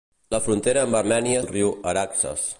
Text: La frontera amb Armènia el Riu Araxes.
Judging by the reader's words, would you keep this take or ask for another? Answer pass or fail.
pass